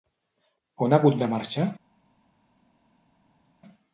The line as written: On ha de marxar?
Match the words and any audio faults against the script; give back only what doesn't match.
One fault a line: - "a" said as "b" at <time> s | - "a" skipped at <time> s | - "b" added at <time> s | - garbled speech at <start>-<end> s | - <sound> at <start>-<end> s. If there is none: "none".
- "hagut" added at 1.0 s